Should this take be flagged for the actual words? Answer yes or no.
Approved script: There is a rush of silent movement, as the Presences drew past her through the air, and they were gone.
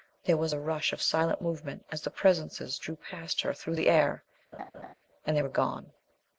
yes